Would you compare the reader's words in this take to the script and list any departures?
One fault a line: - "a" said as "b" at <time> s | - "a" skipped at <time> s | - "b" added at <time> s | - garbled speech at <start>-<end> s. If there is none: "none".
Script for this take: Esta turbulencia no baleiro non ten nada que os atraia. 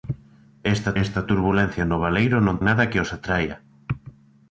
- "esta" added at 1.0 s
- "ten" skipped at 2.6 s